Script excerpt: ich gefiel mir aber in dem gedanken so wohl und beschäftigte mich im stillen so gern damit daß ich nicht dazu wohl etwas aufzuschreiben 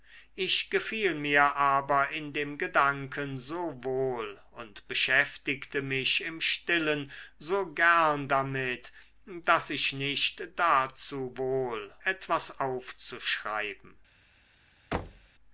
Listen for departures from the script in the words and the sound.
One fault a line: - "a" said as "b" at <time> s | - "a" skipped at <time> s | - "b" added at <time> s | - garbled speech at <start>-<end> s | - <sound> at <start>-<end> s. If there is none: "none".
- thud at 14.9-15.3 s